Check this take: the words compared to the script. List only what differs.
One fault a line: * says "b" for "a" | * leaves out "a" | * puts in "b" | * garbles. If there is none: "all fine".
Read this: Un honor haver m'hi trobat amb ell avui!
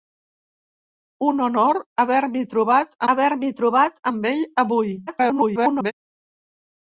* puts in "haver m'hi trobat"
* garbles